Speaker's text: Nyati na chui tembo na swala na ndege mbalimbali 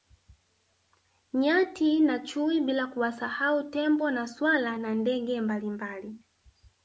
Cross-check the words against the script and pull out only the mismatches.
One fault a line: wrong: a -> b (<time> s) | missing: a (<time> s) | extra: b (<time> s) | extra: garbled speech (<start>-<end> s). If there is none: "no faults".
extra: bila kuwasahau (2.6 s)